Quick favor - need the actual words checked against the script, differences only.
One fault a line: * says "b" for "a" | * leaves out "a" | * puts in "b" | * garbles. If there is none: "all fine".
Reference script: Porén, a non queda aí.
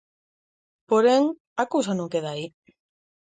* puts in "cousa"